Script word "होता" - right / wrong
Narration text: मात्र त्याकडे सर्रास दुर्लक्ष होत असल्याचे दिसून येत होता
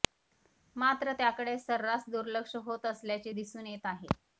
wrong